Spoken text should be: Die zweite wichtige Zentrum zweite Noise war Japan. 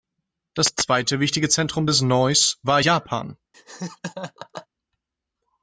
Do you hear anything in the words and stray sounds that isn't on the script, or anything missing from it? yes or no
yes